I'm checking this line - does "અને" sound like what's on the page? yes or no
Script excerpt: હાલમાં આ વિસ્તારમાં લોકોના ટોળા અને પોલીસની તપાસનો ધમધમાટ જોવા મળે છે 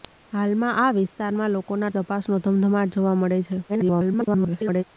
no